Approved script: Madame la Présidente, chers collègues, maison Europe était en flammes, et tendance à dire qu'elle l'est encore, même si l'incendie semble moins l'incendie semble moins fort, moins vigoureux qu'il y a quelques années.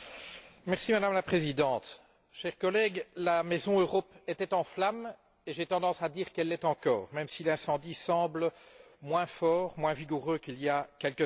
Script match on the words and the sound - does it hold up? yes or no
no